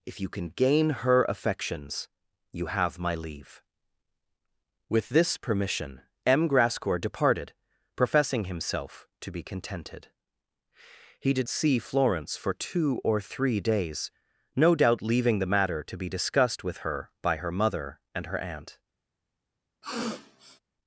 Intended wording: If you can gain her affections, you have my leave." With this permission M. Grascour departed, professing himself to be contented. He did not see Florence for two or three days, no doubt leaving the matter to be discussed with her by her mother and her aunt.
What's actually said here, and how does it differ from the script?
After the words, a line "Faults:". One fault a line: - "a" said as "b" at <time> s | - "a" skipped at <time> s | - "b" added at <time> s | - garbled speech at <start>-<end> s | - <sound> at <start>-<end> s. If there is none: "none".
If you can gain her affections, you have my leave." With this permission M. Grascour departed, professing himself to be contented. He did see Florence for two or three days, no doubt leaving the matter to be discussed with her by her mother and her aunt.
Faults:
- "not" skipped at 11.5 s
- sniff at 19.8-20.6 s